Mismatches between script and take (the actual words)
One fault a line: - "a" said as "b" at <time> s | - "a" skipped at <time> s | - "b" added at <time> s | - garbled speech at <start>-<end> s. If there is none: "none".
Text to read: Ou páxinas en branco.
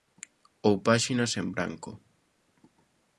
none